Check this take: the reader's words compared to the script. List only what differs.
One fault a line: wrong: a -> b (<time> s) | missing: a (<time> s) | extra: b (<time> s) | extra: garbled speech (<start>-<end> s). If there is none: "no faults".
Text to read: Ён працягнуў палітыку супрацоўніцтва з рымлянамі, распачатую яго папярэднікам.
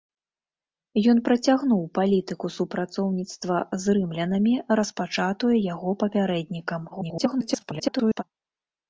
extra: garbled speech (6.9-8.2 s)